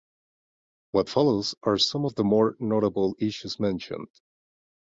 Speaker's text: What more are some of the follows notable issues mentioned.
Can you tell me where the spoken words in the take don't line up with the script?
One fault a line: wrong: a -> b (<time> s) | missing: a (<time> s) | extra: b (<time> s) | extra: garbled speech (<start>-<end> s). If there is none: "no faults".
wrong: more -> follows (1.1 s)
wrong: follows -> more (2.2 s)